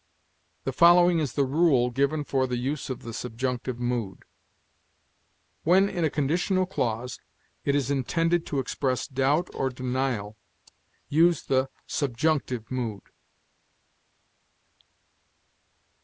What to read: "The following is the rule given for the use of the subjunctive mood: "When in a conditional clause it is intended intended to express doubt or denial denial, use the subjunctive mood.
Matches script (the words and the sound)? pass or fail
fail